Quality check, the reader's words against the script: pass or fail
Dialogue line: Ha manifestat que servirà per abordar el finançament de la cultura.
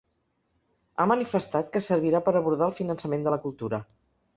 pass